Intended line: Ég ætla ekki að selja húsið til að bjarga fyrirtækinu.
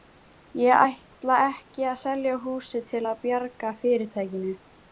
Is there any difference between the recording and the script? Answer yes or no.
no